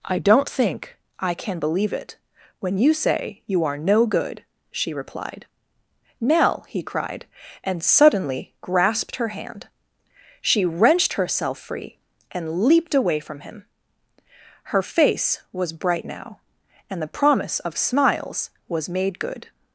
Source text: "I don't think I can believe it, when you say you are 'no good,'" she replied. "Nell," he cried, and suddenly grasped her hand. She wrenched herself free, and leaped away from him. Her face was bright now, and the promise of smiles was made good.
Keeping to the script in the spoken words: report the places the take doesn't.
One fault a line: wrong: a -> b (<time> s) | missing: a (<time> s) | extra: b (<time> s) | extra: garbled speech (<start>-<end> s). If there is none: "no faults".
no faults